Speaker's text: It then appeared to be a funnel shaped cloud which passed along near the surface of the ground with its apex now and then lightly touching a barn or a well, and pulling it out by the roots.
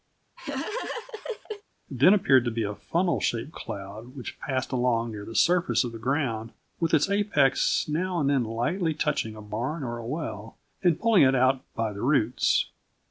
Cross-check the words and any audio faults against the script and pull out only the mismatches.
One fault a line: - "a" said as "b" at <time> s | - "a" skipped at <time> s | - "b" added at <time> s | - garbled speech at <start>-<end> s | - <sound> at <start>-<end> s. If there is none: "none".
- laugh at 0.4-1.6 s